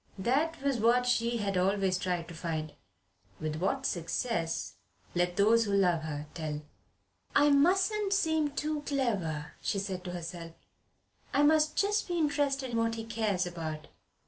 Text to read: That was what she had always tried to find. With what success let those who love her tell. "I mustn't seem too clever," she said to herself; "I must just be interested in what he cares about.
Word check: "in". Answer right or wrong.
wrong